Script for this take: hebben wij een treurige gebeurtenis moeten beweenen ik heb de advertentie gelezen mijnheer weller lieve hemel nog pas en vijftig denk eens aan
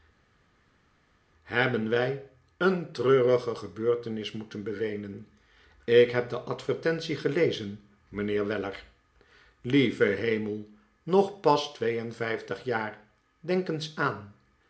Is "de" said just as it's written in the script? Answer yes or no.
yes